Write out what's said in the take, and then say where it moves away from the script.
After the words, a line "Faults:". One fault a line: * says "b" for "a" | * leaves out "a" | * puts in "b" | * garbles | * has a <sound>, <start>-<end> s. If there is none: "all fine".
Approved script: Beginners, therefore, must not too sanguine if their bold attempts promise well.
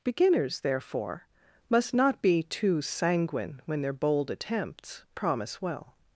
Beginners, therefore, must not be too sanguine when their bold attempts promise well.
Faults:
* puts in "be"
* says "when" for "if"